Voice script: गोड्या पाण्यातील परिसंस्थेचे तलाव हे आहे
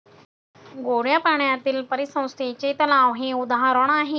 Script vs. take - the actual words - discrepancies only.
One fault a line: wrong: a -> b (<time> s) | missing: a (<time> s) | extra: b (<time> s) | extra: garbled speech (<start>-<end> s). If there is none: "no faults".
extra: उदाहरण (3.3 s)